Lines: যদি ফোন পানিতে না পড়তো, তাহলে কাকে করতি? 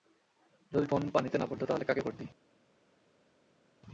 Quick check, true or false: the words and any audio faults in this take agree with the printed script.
true